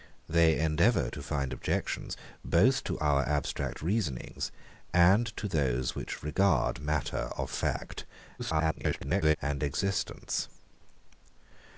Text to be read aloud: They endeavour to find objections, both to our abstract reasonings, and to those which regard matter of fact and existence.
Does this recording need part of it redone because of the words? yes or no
yes